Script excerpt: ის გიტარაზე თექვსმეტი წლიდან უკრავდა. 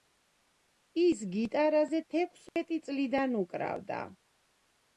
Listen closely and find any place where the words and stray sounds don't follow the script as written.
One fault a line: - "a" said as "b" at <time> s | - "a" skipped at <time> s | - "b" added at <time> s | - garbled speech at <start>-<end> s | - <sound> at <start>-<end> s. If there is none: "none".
- dropout at 2.5-2.6 s